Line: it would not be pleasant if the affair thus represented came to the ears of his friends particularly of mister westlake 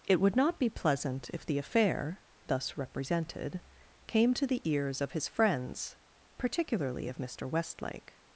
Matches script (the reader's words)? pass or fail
pass